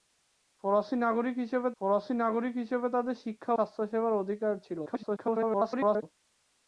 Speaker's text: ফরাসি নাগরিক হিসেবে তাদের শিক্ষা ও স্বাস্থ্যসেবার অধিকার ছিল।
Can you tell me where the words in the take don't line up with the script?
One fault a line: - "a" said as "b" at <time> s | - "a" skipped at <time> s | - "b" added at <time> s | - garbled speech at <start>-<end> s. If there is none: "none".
- "ফরাসি নাগরিক হিসেবে" added at 1.8 s
- "ও" skipped at 3.5 s
- garbled speech at 4.9-6.0 s